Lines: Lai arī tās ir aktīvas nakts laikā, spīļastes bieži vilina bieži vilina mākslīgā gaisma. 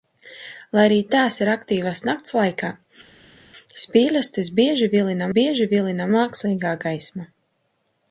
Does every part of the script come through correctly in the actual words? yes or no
yes